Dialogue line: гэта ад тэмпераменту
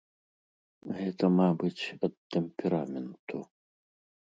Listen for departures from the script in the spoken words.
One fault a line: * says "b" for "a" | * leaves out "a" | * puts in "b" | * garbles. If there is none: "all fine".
* puts in "мабыць"